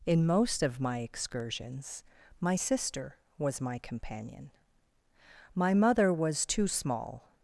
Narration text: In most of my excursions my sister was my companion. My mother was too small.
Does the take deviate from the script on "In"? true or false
false